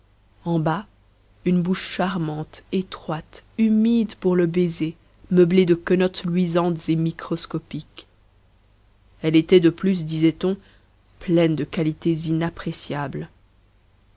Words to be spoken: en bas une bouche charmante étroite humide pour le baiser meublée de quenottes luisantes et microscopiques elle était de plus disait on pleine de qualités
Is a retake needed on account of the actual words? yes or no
no